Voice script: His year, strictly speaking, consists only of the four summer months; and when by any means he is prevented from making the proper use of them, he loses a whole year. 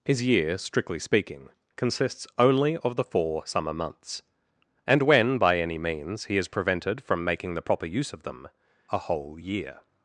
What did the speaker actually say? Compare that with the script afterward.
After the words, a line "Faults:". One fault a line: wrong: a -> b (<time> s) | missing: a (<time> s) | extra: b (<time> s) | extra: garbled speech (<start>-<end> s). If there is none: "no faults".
His year, strictly speaking, consists only of the four summer months; and when by any means he is prevented from making the proper use of them, a whole year.
Faults:
missing: he loses (8.5 s)